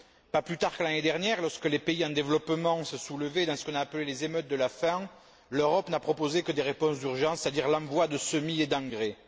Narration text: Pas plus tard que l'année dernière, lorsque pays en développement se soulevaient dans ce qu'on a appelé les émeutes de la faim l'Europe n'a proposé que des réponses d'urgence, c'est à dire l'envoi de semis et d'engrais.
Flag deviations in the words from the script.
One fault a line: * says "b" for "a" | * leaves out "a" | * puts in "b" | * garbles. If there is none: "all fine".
* puts in "les"